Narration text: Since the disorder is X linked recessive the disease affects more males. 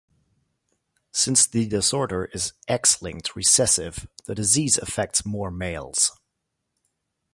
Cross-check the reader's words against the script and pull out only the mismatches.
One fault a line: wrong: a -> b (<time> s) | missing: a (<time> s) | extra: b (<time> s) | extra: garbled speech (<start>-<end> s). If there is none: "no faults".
no faults